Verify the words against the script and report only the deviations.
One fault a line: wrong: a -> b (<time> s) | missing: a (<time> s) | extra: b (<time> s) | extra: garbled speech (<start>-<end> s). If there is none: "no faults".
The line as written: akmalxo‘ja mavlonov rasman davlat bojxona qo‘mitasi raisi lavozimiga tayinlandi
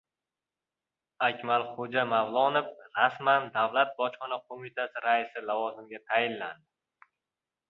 no faults